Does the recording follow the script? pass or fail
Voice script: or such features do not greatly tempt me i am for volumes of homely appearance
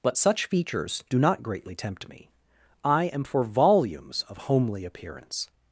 fail